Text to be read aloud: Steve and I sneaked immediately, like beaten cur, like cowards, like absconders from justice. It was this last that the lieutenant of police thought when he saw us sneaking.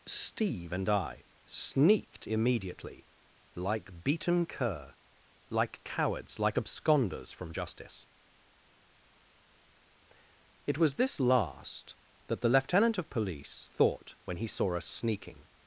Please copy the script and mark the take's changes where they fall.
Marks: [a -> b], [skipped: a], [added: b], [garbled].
Steve and I sneaked immediately, like beaten cur, like cowards, like absconders from justice. It was this last that the lieutenant of police thought when he saw us sneaking.